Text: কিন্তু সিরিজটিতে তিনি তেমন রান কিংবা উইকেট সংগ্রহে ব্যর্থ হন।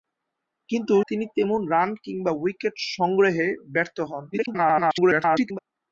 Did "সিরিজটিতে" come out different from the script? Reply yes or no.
yes